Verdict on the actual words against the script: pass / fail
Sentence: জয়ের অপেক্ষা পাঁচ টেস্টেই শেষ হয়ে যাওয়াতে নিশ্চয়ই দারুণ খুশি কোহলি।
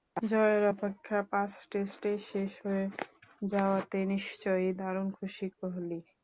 pass